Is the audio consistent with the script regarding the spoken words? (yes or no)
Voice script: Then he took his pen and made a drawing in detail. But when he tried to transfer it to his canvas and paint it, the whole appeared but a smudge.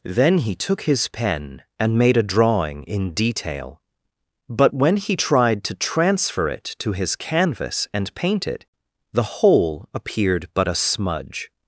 yes